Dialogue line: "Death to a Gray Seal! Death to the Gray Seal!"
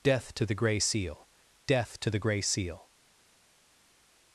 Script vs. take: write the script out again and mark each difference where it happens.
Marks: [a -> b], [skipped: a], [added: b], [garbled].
"Death to [a -> the] Gray Seal! Death to the Gray Seal!"